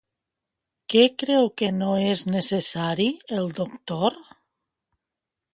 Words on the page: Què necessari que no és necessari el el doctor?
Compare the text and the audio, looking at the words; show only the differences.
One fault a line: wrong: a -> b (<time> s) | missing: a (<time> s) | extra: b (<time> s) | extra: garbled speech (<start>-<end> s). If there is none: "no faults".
wrong: necessari -> creu (1.2 s)
missing: el (3.5 s)